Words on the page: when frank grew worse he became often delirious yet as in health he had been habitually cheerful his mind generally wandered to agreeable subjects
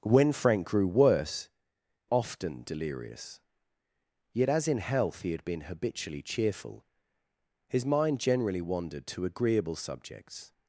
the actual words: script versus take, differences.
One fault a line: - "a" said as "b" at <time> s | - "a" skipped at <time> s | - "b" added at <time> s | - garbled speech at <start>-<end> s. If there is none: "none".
- "he became" skipped at 1.5 s